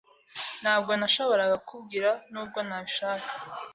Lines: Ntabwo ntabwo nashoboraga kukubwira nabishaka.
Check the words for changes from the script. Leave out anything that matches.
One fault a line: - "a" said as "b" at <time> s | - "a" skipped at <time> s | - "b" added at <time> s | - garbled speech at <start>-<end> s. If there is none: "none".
- "ntabwo" skipped at 0.9 s
- "nubwo" added at 2.3 s